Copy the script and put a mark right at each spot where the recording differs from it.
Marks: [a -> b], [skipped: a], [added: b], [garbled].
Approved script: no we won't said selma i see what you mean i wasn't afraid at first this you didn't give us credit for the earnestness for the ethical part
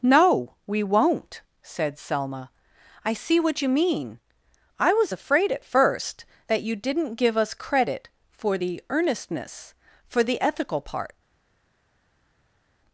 no we won't said selma i see what you mean i [wasn't -> was] afraid at first [this -> that] you didn't give us credit for the earnestness for the ethical part